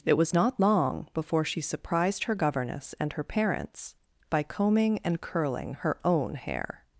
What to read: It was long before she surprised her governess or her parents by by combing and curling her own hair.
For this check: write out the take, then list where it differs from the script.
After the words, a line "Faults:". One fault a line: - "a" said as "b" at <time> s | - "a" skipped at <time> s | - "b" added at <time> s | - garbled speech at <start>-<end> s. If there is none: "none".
It was not long before she surprised her governess and her parents by combing and curling her own hair.
Faults:
- "not" added at 0.3 s
- "or" said as "and" at 3.0 s
- "by" skipped at 4.4 s